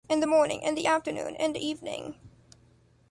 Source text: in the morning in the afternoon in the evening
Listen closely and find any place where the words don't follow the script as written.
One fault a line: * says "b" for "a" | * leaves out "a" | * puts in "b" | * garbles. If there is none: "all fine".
all fine